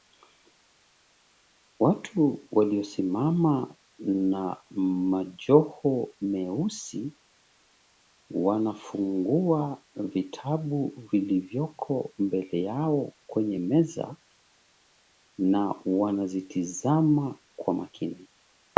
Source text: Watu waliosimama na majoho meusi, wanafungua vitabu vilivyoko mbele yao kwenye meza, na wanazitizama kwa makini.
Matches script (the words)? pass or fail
pass